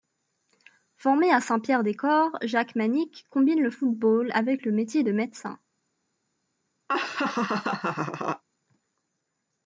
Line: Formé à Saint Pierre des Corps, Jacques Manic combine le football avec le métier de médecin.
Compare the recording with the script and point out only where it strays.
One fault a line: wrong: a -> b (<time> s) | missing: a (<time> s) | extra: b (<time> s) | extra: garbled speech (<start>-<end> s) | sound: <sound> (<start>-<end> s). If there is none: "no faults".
sound: laugh (6.9-8.4 s)